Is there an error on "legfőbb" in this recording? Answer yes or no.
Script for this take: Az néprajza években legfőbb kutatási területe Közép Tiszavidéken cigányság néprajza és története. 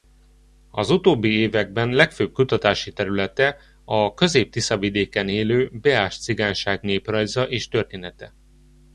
no